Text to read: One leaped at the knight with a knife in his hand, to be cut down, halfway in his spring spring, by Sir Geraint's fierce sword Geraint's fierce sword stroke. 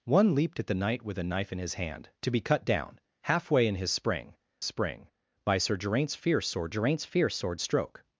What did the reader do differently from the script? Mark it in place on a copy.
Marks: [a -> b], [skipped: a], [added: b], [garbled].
One leaped at the knight with a knife in his hand, to be cut down, halfway in his spring spring, by Sir Geraint's fierce sword Geraint's fierce sword stroke.